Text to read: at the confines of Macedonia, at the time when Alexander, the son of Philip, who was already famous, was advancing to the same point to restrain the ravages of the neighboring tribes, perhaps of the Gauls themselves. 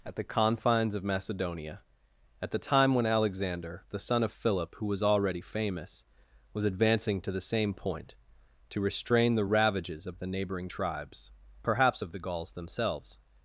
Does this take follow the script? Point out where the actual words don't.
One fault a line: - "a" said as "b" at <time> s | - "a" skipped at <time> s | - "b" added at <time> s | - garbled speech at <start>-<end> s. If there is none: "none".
none